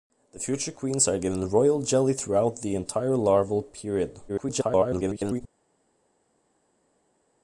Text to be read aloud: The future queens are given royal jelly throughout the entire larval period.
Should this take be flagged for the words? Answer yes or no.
yes